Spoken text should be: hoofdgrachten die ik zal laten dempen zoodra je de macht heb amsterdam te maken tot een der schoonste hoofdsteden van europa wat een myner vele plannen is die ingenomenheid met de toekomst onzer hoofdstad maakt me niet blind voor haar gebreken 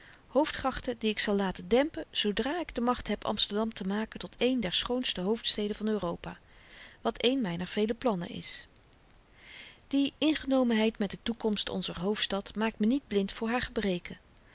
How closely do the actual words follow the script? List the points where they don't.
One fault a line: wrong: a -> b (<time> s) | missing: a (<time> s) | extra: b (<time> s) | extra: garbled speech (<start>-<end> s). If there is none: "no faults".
wrong: je -> ik (2.6 s)